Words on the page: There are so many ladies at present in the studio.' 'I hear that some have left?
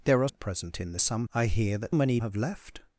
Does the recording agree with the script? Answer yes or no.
no